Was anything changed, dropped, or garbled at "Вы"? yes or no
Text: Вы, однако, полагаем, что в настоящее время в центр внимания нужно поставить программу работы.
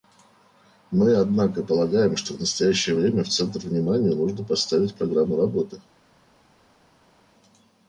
yes